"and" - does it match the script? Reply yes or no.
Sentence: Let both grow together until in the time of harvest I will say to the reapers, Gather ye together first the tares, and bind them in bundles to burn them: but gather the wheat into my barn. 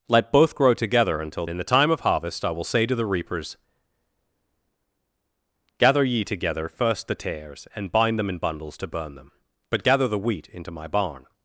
yes